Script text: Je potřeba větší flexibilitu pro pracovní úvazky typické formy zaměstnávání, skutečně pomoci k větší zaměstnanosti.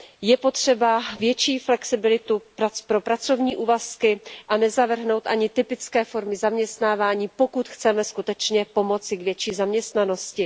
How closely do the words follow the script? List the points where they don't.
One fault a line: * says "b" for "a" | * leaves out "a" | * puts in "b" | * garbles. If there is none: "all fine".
* puts in "a nezavrhnout ani"
* puts in "pokud chceme"